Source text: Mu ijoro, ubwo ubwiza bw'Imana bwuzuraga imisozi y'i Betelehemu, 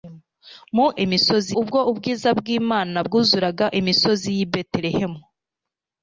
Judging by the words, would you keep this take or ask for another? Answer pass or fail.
fail